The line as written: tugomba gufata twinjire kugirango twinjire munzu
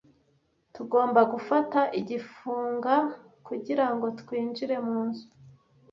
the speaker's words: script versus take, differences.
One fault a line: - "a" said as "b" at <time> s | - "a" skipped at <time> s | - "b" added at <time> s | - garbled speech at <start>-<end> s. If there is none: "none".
- "twinjire" said as "igifunga" at 2.0 s